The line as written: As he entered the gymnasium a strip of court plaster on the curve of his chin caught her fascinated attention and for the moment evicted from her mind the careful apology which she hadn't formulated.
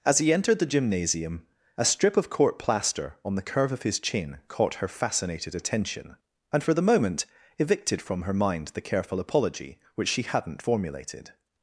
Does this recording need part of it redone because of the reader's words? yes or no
no